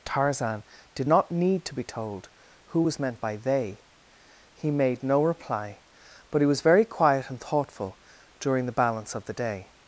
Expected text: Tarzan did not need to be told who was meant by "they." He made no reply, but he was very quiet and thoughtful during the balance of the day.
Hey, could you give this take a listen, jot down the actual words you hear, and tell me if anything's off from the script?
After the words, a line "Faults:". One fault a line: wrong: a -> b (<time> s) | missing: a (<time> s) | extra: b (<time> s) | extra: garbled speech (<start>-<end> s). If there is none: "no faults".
Tarzan did not need to be told who was meant by "they." He made no reply, but he was very quiet and thoughtful during the balance of the day.
Faults:
no faults